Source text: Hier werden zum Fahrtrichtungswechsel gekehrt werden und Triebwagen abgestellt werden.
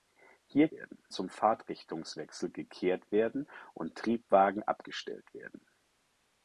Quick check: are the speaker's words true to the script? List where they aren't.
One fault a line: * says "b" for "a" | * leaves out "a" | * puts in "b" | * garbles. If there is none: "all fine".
all fine